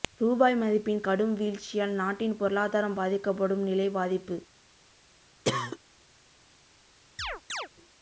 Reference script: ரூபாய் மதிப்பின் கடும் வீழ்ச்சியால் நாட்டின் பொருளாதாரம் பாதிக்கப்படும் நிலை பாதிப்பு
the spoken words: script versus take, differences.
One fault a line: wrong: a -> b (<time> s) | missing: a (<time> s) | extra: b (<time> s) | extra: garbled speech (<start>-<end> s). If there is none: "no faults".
no faults